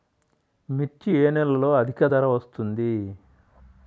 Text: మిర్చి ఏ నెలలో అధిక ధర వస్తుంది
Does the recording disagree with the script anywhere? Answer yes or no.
no